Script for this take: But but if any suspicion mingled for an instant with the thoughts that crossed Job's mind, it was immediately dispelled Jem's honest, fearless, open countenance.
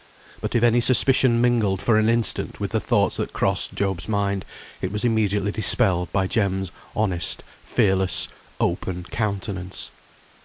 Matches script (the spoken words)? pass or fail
fail